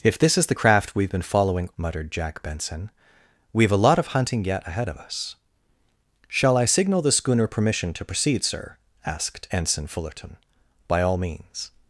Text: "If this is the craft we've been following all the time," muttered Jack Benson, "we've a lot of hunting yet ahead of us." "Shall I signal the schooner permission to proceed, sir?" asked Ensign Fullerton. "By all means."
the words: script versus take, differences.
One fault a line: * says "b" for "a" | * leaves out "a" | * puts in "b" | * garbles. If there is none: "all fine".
* leaves out "all the time"